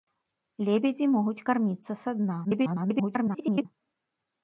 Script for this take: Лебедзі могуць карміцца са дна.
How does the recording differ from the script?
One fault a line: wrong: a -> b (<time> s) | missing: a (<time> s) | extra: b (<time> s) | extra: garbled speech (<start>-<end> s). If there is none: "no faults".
extra: garbled speech (2.4-3.7 s)